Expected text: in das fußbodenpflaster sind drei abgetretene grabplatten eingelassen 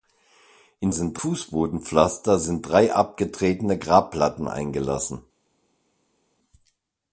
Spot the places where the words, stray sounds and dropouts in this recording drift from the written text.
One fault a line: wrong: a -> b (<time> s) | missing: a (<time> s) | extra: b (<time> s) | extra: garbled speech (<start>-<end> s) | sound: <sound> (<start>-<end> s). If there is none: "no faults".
wrong: das -> sind (0.9 s)